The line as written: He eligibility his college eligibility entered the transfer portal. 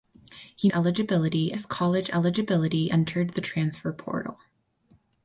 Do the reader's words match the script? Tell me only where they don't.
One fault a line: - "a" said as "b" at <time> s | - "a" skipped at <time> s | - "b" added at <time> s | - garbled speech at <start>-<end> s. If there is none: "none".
none